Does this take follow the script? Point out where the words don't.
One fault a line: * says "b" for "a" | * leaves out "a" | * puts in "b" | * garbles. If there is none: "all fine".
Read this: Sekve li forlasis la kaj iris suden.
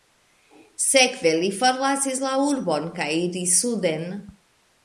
* puts in "urbon"